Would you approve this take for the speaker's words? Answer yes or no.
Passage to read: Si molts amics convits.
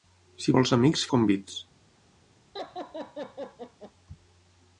yes